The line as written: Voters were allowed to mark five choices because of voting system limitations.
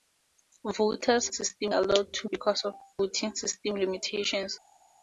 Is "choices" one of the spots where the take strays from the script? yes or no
yes